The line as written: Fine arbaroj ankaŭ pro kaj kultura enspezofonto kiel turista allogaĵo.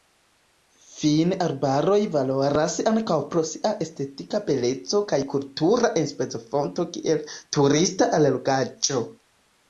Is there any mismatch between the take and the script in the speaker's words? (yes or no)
yes